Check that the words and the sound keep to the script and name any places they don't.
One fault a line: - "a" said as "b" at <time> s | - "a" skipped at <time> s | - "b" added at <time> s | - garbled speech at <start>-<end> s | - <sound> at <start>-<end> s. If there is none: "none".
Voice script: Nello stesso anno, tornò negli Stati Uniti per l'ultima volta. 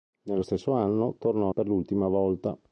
- "negli Stati Uniti" skipped at 1.5 s